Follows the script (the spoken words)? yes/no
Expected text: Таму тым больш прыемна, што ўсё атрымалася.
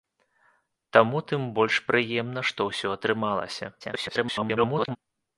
no